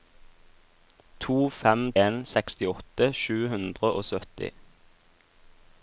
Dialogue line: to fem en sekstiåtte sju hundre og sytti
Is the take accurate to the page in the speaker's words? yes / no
yes